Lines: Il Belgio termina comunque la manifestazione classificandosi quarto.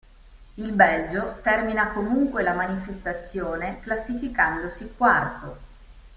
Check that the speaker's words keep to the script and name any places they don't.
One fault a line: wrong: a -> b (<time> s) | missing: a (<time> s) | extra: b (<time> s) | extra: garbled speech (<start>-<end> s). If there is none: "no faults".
no faults